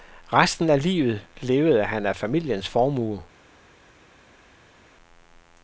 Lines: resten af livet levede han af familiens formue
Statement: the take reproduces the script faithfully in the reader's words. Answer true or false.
true